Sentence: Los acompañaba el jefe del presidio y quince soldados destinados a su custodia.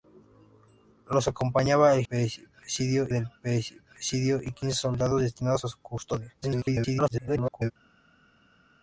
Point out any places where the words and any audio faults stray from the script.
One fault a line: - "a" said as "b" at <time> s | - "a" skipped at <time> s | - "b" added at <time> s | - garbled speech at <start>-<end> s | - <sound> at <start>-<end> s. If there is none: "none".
- "jefe" said as "presidio" at 2.1 s
- garbled speech at 6.4-7.7 s